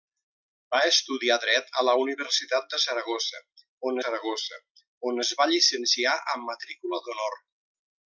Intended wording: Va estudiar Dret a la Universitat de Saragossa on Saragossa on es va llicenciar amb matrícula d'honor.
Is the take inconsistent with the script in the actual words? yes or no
no